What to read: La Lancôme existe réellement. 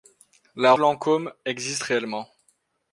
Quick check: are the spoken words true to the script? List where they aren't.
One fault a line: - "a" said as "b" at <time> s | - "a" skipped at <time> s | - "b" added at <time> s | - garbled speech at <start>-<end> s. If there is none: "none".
none